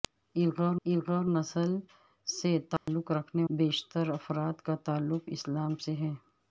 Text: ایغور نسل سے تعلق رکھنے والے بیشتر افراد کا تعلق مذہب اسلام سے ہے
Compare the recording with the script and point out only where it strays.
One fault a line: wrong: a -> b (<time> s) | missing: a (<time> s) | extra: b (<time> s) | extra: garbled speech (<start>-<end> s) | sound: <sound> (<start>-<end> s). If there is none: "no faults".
extra: ایغور (0.9 s)
sound: dropout (2.8-2.9 s)
missing: والے (3.4 s)
missing: مذہب (5.3 s)